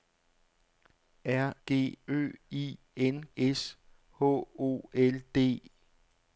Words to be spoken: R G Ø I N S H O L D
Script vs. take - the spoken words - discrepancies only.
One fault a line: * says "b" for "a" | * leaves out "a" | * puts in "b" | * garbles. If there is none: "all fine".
all fine